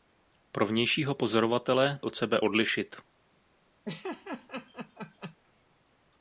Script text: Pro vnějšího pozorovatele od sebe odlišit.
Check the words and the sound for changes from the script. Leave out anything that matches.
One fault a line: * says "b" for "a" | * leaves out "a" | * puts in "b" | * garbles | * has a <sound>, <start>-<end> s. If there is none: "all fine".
* has a laugh, 3.9-5.4 s